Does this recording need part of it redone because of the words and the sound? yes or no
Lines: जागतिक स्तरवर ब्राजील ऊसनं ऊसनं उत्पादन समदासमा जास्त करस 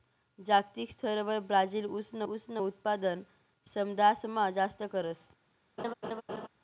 yes